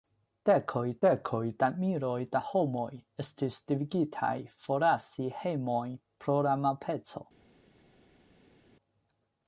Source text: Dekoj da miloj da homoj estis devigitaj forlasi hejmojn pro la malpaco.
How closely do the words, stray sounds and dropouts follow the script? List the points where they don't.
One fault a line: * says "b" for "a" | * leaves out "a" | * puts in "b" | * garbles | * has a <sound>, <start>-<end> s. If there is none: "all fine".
* puts in "dekoj"